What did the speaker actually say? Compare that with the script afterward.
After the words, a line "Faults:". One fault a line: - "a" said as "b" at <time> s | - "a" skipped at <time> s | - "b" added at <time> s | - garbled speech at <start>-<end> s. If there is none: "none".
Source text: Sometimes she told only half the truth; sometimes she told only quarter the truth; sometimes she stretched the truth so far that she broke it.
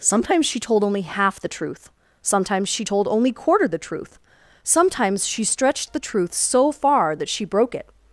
Sometimes she told only half the truth; sometimes she told only quarter the truth; sometimes she stretched the truth so far that she broke it.
Faults:
none